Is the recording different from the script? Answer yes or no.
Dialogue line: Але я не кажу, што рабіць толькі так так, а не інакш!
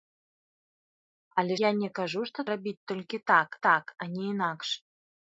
no